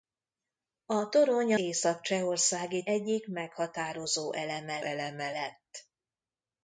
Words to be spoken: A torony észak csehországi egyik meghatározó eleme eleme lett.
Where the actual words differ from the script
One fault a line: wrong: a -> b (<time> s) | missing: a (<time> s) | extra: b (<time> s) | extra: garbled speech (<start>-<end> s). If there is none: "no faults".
no faults